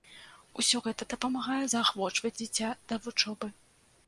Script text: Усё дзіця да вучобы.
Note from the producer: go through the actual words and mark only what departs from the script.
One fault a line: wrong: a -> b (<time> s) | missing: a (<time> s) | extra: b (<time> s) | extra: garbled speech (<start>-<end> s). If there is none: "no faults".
extra: гэта дапамагае заахвочваць (0.8 s)